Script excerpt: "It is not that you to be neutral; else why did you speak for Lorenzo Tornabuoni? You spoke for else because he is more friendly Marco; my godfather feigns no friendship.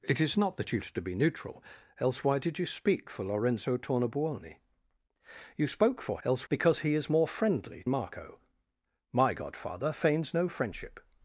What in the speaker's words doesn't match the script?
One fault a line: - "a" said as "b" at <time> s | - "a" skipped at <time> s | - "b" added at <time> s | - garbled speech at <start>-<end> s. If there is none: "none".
none